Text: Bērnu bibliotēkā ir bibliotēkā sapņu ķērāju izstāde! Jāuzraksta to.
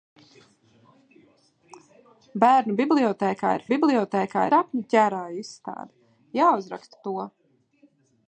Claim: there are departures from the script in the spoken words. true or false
false